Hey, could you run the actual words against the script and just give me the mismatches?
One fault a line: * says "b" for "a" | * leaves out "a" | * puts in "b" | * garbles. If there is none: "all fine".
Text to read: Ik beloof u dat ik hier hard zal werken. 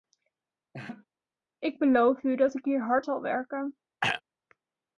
all fine